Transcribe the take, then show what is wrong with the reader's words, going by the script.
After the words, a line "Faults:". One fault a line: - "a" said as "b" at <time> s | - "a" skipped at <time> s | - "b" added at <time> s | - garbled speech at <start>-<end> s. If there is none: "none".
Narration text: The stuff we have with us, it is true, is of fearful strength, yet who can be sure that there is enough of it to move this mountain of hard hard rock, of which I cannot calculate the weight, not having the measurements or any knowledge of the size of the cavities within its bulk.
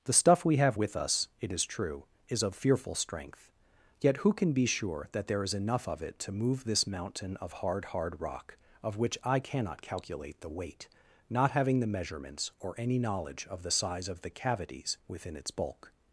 The stuff we have with us, it is true, is of fearful strength, yet who can be sure that there is enough of it to move this mountain of hard hard rock, of which I cannot calculate the weight, not having the measurements or any knowledge of the size of the cavities within its bulk.
Faults:
none